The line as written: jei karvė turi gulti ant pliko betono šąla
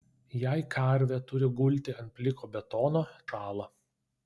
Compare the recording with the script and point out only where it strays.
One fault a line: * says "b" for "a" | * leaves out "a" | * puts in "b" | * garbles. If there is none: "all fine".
all fine